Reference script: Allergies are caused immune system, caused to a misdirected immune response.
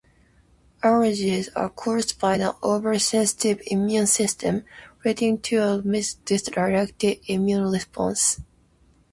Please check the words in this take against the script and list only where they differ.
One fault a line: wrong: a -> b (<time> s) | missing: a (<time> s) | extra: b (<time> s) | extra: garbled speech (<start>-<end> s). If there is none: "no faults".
extra: by an oversensitive (2.2 s)
wrong: caused -> leading (5.1 s)